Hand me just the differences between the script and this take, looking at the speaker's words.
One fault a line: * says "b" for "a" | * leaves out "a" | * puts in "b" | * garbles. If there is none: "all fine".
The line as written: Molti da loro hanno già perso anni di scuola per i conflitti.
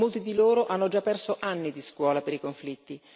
* says "di" for "da"